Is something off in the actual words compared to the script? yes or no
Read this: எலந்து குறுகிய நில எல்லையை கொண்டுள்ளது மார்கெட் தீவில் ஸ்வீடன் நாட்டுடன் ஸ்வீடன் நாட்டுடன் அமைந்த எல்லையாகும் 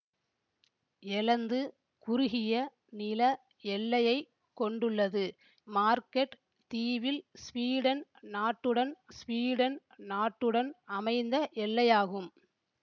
no